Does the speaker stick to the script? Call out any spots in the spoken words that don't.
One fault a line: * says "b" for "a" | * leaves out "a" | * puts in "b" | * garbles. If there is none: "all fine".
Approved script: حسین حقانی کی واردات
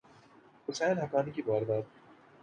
all fine